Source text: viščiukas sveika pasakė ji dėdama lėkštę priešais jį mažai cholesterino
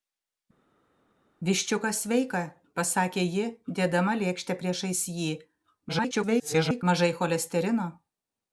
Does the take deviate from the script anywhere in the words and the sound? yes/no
yes